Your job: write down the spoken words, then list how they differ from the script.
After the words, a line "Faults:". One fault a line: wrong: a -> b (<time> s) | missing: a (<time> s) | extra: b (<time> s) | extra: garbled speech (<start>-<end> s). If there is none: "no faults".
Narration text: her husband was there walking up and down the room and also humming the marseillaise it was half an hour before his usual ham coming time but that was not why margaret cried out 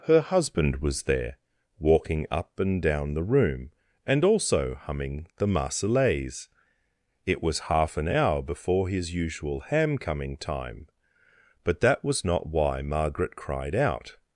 her husband was there walking up and down the room and also humming the marseillaise it was half an hour before his usual ham coming time but that was not why margaret cried out
Faults:
no faults